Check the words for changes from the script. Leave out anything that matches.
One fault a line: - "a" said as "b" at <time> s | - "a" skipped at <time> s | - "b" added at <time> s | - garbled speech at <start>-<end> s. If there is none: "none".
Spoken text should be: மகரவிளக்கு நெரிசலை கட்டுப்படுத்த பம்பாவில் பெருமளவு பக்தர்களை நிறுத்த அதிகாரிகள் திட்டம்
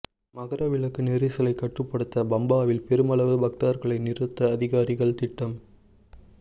none